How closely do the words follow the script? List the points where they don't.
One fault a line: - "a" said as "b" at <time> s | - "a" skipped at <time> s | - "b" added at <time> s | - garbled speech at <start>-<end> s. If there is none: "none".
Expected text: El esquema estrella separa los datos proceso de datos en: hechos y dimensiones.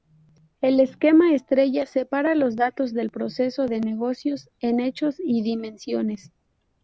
- "del" added at 2.9 s
- "datos" said as "negocios" at 3.8 s